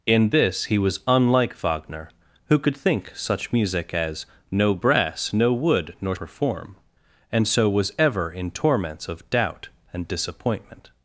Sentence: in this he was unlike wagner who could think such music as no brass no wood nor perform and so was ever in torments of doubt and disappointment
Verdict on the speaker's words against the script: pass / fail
pass